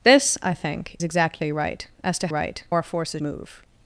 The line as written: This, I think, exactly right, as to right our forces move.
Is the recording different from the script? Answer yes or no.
no